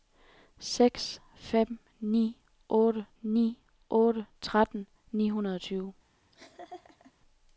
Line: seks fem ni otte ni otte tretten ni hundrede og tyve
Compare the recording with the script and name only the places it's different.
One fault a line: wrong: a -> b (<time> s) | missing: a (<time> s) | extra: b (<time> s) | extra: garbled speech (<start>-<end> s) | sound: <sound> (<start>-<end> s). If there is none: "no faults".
sound: laugh (6.3-7.1 s)